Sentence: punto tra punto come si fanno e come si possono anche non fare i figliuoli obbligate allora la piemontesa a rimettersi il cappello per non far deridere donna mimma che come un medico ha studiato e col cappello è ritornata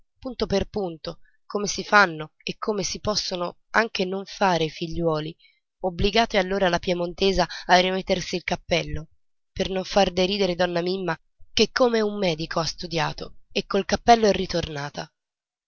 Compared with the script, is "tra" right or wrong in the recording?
wrong